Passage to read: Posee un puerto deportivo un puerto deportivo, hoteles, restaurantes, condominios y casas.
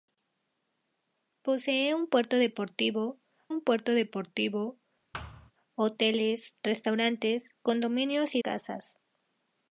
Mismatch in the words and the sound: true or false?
true